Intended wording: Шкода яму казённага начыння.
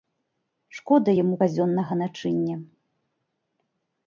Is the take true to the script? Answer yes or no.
yes